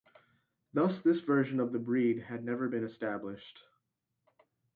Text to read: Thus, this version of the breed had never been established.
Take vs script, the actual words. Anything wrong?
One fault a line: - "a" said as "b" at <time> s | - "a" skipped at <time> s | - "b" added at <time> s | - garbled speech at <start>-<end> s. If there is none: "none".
none